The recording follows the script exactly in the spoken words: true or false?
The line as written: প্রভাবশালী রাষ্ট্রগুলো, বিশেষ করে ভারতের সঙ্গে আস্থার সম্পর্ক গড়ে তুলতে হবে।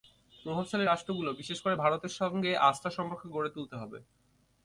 true